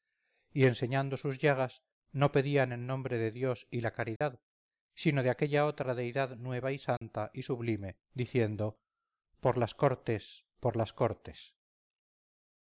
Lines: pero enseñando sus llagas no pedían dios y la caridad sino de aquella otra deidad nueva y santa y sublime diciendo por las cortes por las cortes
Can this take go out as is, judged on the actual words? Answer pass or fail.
fail